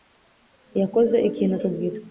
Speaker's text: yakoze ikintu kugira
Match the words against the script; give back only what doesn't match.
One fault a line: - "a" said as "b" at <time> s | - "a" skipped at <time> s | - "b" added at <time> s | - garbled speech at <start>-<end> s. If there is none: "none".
none